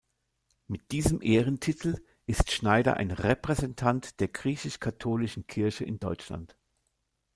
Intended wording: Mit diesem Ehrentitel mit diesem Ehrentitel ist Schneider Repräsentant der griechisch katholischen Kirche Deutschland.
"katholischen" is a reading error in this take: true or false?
false